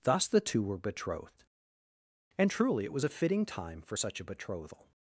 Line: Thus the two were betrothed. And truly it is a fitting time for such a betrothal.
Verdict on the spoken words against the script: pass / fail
fail